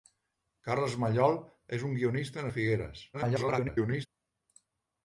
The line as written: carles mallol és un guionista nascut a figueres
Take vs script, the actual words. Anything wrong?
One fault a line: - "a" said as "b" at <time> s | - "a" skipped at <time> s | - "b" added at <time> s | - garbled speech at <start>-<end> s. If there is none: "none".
- "nascut" skipped at 2.5 s
- garbled speech at 3.1-4.1 s